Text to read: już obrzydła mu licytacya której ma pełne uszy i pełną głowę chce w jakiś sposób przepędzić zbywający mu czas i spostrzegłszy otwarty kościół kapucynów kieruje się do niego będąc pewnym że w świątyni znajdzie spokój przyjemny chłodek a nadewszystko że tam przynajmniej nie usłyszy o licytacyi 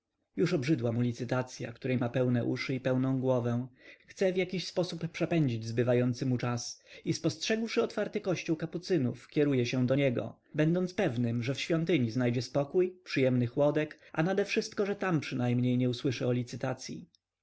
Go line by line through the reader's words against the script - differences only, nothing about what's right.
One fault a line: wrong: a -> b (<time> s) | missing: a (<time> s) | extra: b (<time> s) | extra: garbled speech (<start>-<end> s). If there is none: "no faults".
no faults